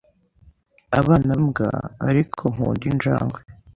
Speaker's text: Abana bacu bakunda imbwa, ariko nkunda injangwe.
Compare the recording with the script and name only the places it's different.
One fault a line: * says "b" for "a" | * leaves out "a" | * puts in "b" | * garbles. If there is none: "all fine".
* leaves out "bacu bakunda"